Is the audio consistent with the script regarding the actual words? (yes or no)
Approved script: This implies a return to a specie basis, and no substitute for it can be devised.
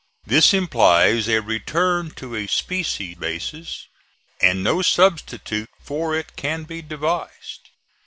yes